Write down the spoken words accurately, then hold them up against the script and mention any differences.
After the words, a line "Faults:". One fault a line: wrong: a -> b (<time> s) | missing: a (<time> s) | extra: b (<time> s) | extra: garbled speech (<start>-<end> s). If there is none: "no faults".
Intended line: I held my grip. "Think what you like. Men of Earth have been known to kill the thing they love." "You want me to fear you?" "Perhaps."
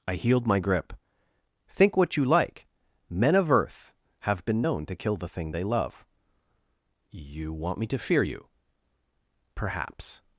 I healed my grip. "Think what you like. Men of Earth have been known to kill the thing they love." "You want me to fear you?" "Perhaps."
Faults:
wrong: held -> healed (0.1 s)